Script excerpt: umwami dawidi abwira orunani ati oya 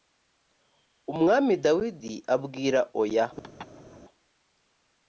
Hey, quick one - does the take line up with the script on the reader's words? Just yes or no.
no